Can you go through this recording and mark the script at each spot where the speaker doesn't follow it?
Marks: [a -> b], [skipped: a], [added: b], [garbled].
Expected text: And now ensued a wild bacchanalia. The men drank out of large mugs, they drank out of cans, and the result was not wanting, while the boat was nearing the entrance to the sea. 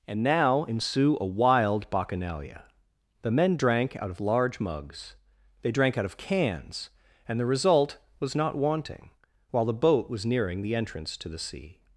And now [ensued -> ensue] a wild bacchanalia. The men drank out of large mugs, they drank out of cans, and the result was not wanting, while the boat was nearing the entrance to the sea.